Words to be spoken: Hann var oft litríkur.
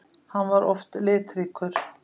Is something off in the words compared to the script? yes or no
no